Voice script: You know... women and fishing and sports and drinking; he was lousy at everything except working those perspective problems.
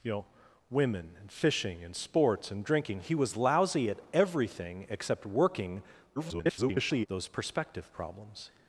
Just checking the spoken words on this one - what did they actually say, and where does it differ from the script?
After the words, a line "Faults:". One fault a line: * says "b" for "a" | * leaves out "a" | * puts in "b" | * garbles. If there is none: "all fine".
You know... women and fishing and sports and drinking; he was lousy at everything except working [garbled] those perspective problems.
Faults:
* garbles